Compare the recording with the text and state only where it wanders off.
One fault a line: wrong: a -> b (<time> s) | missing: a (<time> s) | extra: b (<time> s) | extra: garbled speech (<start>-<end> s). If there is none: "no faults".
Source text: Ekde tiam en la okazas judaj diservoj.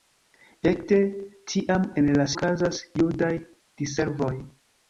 no faults